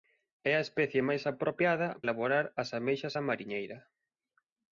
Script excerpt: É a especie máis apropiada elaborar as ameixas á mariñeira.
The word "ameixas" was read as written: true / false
true